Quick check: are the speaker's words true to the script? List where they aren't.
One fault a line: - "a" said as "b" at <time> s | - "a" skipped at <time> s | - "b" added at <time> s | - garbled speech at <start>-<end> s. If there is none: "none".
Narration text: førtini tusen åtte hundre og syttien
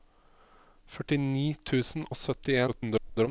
- "åtte hundre" skipped at 2.1 s
- garbled speech at 2.7-3.3 s